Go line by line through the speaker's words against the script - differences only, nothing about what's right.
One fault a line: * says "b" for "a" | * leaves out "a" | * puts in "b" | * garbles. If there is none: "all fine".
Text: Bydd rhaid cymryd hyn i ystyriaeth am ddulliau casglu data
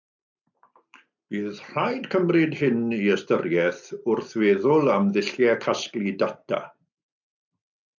* puts in "wrth feddwl"